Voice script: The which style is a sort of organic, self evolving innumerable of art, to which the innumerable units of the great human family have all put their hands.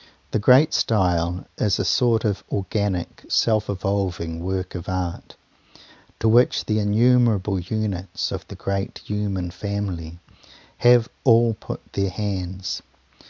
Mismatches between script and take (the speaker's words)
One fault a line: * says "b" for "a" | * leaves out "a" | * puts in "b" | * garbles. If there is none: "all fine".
* says "great" for "which"
* says "work" for "innumerable"